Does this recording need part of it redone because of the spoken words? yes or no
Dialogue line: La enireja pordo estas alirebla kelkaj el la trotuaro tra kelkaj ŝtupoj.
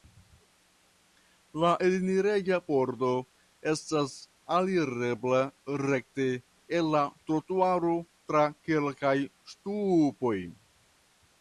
yes